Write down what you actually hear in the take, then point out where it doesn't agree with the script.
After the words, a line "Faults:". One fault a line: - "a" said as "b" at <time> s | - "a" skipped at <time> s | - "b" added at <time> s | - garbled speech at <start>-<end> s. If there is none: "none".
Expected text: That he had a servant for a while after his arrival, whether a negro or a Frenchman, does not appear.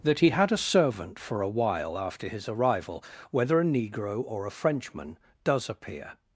That he had a servant for a while after his arrival, whether a negro or a Frenchman, does appear.
Faults:
- "not" skipped at 5.7 s